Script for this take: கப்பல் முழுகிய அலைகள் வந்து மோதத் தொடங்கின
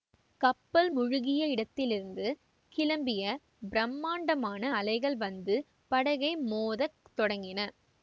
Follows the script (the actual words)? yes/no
no